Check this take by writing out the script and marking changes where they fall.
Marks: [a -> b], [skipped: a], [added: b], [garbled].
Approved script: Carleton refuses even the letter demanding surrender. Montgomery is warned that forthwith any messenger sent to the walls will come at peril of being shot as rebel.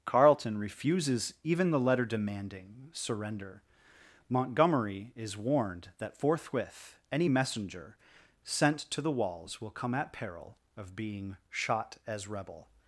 Carleton refuses even the letter demanding surrender. Montgomery is warned that forthwith any messenger sent to the walls will come at peril of being shot as rebel.